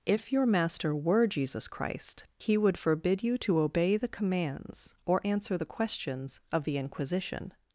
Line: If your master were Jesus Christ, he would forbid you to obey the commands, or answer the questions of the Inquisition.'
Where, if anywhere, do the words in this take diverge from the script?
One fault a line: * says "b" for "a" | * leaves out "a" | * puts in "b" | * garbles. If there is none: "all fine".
all fine